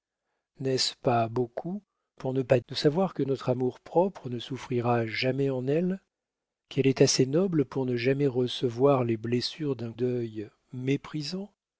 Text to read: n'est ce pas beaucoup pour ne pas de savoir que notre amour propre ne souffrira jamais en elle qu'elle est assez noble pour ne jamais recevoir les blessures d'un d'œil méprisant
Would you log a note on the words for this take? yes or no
no